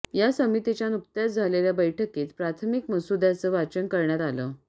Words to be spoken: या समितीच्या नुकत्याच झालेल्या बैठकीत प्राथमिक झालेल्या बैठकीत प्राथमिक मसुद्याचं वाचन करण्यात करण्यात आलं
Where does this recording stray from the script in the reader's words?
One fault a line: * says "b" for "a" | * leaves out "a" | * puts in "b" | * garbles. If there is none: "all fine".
* leaves out "झालेल्या बैठकीत प्राथमिक"
* leaves out "करण्यात"